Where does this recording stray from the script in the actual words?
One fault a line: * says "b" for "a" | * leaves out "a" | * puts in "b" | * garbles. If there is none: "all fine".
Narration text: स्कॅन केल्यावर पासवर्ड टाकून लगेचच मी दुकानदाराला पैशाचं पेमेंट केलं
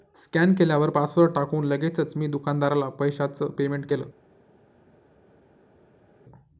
all fine